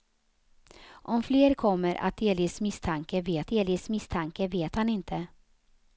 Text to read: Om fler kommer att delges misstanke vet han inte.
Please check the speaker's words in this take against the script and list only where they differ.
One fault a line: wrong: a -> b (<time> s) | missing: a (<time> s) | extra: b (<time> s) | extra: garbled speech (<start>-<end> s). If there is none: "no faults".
extra: delges misstanke vet (3.5 s)